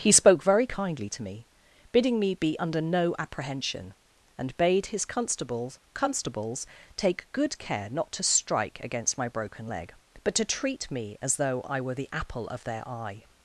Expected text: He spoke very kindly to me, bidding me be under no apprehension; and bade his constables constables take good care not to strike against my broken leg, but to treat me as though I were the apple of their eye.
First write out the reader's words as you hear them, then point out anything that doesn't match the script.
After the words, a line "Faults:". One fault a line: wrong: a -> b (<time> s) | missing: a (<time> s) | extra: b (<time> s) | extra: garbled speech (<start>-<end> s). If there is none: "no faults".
He spoke very kindly to me, bidding me be under no apprehension; and bade his constables constables take good care not to strike against my broken leg, but to treat me as though I were the apple of their eye.
Faults:
no faults